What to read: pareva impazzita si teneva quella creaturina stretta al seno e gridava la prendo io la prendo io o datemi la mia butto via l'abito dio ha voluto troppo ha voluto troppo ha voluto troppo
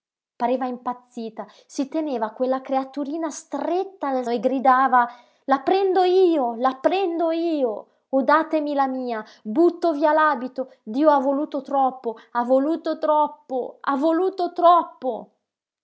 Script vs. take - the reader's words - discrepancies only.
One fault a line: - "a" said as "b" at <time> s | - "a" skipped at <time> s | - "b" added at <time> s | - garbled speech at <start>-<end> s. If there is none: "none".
- "seno" skipped at 4.2 s